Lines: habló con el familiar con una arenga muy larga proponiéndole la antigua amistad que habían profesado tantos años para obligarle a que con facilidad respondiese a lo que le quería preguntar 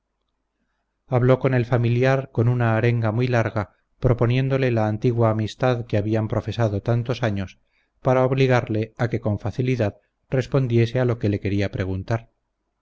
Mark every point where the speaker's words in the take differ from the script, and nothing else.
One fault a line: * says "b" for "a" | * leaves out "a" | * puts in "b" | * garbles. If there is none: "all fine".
all fine